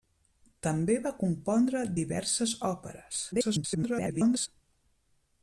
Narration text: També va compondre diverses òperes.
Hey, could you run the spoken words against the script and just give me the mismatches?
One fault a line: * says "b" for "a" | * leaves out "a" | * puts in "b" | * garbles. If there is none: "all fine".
* garbles